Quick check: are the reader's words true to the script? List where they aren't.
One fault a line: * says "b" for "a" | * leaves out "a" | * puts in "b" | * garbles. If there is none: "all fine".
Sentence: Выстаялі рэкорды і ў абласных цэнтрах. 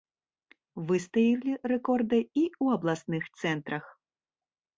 all fine